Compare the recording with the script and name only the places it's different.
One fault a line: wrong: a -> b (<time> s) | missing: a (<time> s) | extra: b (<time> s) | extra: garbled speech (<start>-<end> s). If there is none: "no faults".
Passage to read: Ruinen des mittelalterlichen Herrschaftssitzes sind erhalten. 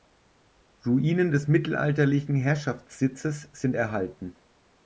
no faults